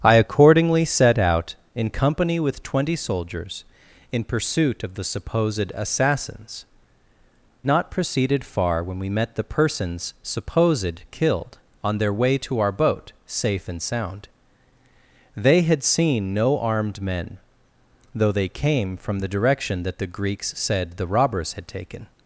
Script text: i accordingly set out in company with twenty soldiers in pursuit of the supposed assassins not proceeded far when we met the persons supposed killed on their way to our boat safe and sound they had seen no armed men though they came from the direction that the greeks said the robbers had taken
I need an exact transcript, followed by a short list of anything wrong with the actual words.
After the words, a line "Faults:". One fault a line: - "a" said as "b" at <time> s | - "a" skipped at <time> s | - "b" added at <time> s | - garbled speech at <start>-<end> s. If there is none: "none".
i accordingly set out in company with twenty soldiers in pursuit of the supposed assassins not proceeded far when we met the persons supposed killed on their way to our boat safe and sound they had seen no armed men though they came from the direction that the greeks said the robbers had taken
Faults:
none